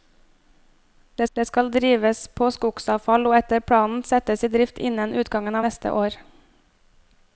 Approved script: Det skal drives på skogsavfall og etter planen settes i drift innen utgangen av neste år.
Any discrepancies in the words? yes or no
yes